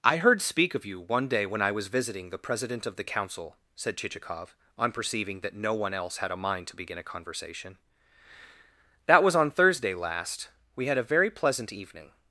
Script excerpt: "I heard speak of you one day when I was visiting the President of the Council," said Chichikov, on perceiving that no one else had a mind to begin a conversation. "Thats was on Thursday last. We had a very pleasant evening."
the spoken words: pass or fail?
fail